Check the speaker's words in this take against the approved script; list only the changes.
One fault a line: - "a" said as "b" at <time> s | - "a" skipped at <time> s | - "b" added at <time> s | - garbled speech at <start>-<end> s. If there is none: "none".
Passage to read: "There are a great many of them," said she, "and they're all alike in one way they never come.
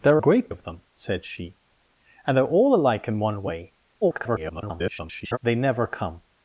- "are" skipped at 0.2 s
- "many" skipped at 0.5 s
- garbled speech at 4.0-5.4 s